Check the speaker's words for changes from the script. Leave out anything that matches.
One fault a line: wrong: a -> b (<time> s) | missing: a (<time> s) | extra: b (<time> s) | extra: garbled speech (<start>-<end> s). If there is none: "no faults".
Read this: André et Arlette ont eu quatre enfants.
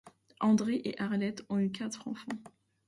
no faults